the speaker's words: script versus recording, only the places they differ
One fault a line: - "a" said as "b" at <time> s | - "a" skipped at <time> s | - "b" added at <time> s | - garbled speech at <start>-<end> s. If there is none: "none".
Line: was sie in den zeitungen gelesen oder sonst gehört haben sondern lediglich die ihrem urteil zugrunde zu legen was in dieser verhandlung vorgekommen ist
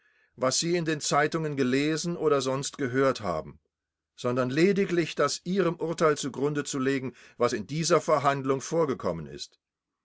- "die" said as "das" at 5.1 s